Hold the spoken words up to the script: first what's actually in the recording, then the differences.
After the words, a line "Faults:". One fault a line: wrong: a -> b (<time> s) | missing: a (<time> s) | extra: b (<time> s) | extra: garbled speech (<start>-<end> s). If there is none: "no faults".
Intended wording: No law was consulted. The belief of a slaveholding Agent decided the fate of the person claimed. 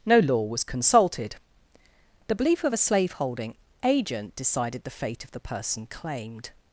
No law was consulted. The belief of a slaveholding Agent decided the fate of the person claimed.
Faults:
no faults